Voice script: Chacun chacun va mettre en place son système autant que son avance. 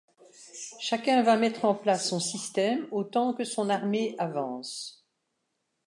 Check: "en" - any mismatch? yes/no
no